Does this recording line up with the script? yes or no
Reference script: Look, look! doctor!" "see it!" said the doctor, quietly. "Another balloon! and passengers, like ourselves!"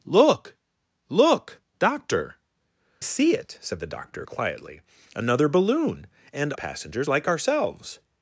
yes